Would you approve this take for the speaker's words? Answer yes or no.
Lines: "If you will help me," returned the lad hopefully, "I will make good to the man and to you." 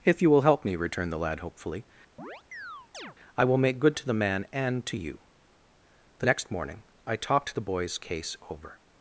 no